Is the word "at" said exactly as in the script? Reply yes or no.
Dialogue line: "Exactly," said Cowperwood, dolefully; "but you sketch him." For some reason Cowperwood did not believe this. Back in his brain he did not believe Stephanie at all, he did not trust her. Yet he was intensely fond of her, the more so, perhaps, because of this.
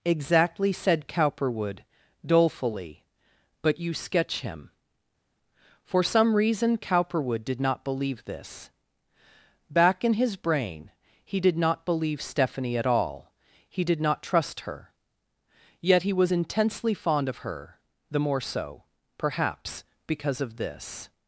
yes